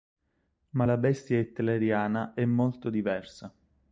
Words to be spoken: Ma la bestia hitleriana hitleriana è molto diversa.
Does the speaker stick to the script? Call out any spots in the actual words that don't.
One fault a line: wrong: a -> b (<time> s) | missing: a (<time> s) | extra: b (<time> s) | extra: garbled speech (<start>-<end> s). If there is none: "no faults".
missing: hitleriana (2.3 s)